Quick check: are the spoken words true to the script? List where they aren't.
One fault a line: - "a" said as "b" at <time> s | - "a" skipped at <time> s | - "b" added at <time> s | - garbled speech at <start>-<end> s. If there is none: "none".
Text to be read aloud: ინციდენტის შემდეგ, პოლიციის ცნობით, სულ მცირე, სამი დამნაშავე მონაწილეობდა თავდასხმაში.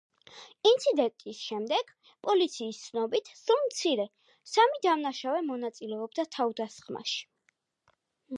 none